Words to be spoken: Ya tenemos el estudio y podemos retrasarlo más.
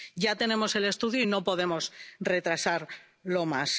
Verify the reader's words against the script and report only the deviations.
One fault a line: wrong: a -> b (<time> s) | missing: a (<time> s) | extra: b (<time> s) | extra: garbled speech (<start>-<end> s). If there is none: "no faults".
extra: no (1.2 s)